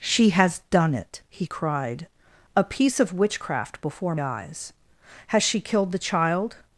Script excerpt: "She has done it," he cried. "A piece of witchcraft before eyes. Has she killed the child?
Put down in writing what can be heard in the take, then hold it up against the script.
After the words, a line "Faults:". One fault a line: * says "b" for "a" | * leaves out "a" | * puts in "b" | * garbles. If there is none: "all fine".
"She has done it," he cried. "A piece of witchcraft before eyes. Has she killed the child?
Faults:
all fine